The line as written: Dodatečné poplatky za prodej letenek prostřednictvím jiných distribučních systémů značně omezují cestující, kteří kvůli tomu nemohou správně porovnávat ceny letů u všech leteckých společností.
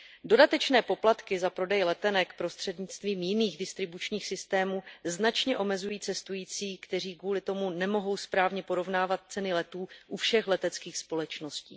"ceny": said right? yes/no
yes